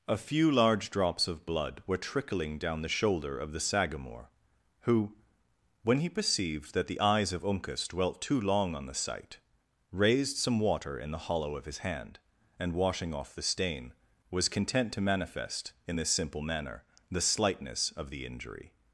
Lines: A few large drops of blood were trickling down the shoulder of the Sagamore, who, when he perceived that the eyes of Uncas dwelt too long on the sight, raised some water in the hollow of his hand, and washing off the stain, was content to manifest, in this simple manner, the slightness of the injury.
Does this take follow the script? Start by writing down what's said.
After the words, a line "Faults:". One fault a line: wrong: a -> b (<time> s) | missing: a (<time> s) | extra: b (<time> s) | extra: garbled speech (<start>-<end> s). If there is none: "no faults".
A few large drops of blood were trickling down the shoulder of the Sagamore, who, when he perceived that the eyes of Uncas dwelt too long on the sight, raised some water in the hollow of his hand, and washing off the stain, was content to manifest, in this simple manner, the slightness of the injury.
Faults:
no faults